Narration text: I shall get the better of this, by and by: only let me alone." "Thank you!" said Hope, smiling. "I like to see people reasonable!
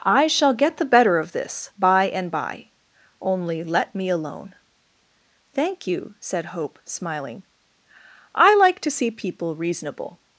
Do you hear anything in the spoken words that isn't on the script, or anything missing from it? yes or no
no